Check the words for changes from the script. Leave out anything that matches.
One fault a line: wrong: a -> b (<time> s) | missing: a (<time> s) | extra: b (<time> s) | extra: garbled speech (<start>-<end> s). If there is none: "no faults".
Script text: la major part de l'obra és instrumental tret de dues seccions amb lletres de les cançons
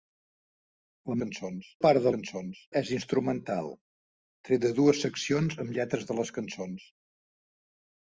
wrong: major -> cançons (1.2 s)
wrong: l'obra -> cançons (2.1 s)